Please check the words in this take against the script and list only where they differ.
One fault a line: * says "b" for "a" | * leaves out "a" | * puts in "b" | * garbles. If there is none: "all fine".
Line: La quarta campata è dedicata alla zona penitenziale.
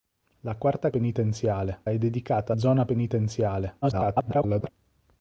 * says "penitenziale" for "campata"
* leaves out "alla"
* garbles